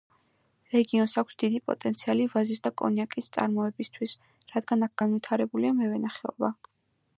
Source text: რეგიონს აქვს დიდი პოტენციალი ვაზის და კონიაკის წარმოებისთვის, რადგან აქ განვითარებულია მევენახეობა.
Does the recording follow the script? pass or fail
pass